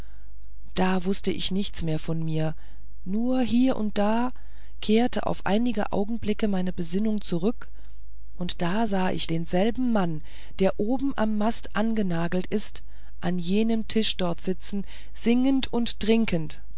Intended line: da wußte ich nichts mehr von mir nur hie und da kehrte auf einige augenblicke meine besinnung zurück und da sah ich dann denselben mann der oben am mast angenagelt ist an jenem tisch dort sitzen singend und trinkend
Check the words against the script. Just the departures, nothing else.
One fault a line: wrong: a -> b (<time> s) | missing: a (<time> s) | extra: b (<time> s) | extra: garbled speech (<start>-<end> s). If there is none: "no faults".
missing: dann (9.3 s)